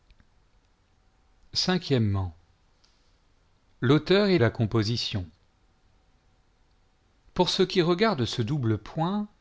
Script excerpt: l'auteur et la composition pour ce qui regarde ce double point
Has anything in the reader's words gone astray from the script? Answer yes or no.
no